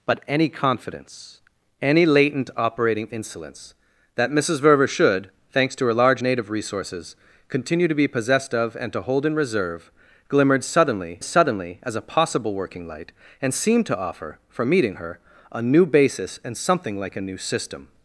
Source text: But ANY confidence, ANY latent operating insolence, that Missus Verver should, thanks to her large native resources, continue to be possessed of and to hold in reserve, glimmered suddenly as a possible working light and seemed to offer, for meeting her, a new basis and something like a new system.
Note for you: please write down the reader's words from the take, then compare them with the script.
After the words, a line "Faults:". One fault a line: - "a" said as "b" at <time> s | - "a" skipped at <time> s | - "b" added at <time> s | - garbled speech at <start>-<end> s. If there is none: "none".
But ANY confidence, ANY latent operating insolence, that Missus Verver should, thanks to her large native resources, continue to be possessed of and to hold in reserve, glimmered suddenly suddenly as a possible working light and seemed to offer, for meeting her, a new basis and something like a new system.
Faults:
- "suddenly" added at 11.2 s